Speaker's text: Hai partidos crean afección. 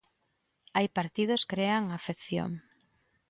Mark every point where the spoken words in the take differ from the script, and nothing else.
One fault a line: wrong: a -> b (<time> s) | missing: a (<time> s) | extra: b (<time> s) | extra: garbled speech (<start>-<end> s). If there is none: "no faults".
no faults